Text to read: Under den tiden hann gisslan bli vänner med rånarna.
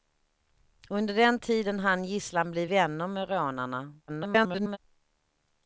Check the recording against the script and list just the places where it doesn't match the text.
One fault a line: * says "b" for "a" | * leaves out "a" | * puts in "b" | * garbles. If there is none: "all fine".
* garbles